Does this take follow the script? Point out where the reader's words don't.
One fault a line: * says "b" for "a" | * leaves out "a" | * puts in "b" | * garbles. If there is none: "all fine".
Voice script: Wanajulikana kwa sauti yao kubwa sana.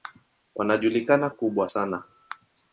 * leaves out "kwa sauti yao"